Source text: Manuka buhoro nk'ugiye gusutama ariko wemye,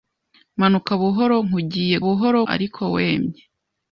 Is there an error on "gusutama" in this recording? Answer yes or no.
yes